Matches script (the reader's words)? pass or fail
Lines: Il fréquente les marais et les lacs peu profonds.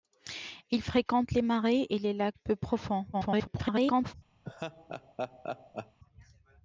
fail